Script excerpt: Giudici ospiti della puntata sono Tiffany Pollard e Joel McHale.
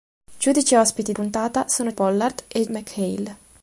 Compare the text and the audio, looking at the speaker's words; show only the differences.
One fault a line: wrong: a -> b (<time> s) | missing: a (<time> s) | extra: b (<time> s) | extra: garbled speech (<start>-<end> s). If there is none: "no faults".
missing: della (1.1 s)
missing: Tiffany (1.9 s)
missing: Joel (2.6 s)